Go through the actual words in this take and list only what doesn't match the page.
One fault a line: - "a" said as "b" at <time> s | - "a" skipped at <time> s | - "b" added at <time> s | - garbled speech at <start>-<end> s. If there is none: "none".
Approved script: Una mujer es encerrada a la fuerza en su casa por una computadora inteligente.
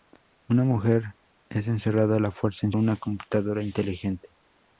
- "su casa por" skipped at 2.7 s